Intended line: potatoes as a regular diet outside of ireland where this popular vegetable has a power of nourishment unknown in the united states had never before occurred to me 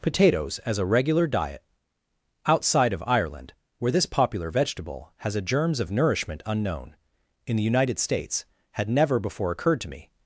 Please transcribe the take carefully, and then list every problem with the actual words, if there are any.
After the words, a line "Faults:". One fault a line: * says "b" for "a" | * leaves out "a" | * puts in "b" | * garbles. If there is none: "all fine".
potatoes as a regular diet outside of ireland where this popular vegetable has a germs of nourishment unknown in the united states had never before occurred to me
Faults:
* says "germs" for "power"